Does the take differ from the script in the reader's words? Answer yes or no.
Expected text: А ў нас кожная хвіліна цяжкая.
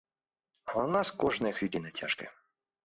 no